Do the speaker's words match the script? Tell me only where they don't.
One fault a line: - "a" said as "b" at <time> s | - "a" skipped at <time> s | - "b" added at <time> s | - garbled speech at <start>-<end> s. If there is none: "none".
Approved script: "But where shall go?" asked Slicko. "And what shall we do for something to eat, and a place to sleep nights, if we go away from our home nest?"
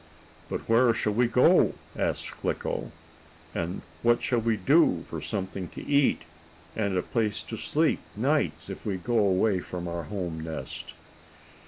- "we" added at 1.1 s